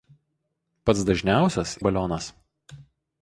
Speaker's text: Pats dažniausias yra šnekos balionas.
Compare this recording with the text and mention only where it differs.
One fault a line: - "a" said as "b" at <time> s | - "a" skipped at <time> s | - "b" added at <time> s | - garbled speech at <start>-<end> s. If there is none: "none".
- "yra šnekos" skipped at 1.7 s